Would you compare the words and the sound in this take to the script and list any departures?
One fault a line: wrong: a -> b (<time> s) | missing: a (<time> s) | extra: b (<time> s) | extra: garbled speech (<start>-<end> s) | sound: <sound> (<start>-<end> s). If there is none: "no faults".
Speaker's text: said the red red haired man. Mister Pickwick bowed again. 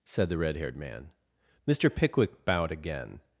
missing: red (0.6 s)